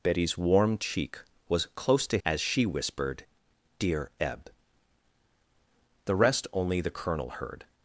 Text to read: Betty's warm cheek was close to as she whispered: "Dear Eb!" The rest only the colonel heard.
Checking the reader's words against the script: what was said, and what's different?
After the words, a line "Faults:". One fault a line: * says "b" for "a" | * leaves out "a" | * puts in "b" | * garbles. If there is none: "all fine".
Betty's warm cheek was close to as she whispered: "Dear Eb!" The rest only the colonel heard.
Faults:
all fine